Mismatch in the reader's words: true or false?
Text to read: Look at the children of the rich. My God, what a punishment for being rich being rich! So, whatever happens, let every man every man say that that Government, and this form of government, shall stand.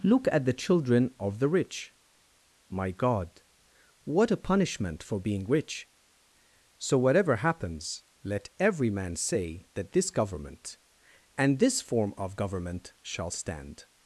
true